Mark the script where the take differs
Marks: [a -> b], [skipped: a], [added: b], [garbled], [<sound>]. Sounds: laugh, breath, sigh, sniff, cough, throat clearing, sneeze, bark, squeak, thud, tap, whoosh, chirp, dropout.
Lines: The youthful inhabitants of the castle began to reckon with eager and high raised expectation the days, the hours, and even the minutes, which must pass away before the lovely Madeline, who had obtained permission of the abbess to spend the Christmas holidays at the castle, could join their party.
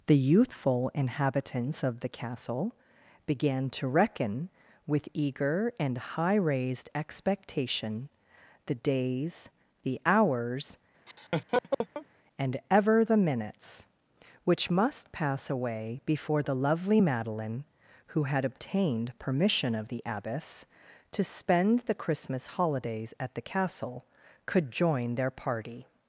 The youthful inhabitants of the castle began to reckon with eager and high raised expectation the days, the hours, [laugh] and [even -> ever] the minutes, which must pass away before the lovely Madeline, who had obtained permission of the abbess to spend the Christmas holidays at the castle, could join their party.